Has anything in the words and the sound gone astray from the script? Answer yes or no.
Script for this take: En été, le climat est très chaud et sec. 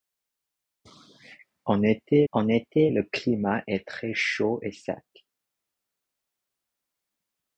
yes